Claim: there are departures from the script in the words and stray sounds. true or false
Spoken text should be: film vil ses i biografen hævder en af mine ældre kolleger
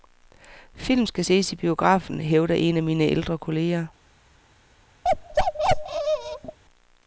true